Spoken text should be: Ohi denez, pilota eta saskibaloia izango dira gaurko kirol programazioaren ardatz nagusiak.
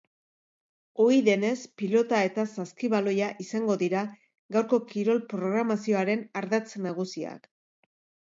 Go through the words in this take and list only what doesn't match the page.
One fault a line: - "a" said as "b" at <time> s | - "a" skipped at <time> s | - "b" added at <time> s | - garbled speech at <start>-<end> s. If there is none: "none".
none